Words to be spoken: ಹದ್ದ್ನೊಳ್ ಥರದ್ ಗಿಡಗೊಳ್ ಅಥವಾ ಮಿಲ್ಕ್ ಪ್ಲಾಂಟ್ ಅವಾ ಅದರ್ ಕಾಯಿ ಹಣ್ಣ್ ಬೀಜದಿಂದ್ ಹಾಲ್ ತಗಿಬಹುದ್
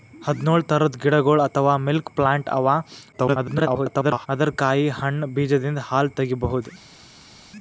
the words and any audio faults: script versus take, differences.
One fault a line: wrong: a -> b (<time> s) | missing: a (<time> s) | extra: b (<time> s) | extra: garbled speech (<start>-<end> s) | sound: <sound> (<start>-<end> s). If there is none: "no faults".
extra: garbled speech (3.1-4.3 s)